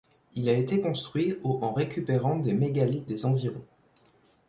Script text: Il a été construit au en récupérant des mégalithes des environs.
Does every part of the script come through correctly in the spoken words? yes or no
yes